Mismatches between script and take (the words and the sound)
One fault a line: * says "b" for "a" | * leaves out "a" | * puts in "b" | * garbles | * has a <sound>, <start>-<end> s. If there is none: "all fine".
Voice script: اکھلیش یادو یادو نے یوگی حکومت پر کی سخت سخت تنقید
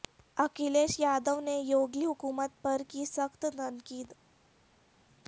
* leaves out "یادو"
* leaves out "سخت"